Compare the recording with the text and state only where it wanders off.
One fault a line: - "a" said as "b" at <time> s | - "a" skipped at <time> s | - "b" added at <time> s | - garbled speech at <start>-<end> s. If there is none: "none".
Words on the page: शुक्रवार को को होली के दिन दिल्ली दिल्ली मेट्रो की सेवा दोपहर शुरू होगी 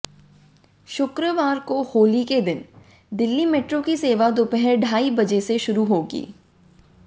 - "को" skipped at 1.8 s
- "दिल्ली" skipped at 3.5 s
- "ढाई बजे से" added at 4.8 s